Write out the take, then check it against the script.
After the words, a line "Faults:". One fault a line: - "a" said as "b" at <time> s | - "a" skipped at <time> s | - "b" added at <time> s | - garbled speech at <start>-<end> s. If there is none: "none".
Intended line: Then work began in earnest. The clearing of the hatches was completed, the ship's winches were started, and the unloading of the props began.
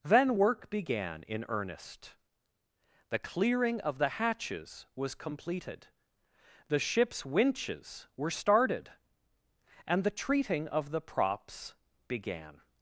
Then work began in earnest. The clearing of the hatches was completed, the ship's winches were started, and the treating of the props began.
Faults:
- "unloading" said as "treating" at 10.1 s